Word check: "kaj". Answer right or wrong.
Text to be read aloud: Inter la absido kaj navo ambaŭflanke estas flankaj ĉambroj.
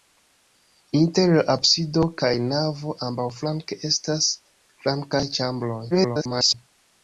right